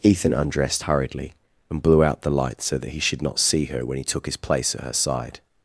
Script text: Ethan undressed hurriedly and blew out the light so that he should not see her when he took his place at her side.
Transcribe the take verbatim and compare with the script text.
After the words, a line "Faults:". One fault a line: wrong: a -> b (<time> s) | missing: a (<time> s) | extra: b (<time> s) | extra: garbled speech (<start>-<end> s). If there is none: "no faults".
Ethan undressed hurriedly and blew out the light so that he should not see her when he took his place at her side.
Faults:
no faults